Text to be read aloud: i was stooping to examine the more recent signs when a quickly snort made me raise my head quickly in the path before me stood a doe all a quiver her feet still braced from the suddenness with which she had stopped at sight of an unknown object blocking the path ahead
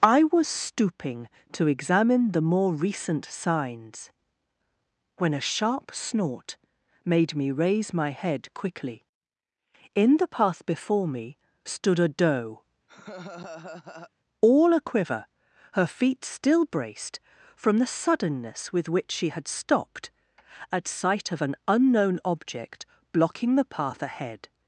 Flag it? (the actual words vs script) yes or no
yes